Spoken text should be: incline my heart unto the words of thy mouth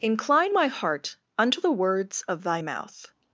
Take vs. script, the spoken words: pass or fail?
pass